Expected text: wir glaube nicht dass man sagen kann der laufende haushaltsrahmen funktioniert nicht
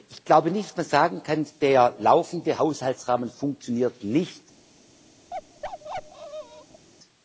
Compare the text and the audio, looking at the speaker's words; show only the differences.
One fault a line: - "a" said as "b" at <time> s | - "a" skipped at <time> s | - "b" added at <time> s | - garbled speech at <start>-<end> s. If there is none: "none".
- "wir" said as "ich" at 0.1 s